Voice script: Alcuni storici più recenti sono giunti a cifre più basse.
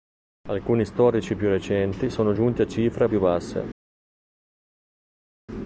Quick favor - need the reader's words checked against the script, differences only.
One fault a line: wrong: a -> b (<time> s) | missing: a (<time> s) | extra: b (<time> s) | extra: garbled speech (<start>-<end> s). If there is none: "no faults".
no faults